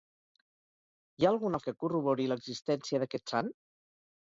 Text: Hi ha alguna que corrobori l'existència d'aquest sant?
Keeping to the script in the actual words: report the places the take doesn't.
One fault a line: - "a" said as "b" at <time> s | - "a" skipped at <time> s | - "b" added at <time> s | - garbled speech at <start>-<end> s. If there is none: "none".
none